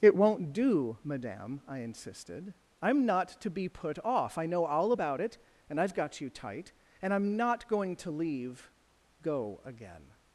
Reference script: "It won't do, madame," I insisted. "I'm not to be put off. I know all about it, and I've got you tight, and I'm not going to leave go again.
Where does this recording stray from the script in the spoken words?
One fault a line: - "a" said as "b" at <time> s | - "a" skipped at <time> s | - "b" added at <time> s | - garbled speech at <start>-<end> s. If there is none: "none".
none